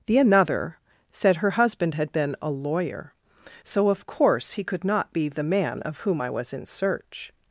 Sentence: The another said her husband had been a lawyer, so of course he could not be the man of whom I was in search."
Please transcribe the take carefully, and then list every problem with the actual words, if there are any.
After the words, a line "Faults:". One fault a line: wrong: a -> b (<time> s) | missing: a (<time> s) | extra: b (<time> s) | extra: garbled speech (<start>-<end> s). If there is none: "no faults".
The another said her husband had been a lawyer, so of course he could not be the man of whom I was in search."
Faults:
no faults